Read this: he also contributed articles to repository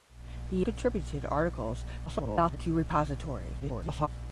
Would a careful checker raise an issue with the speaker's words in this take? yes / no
yes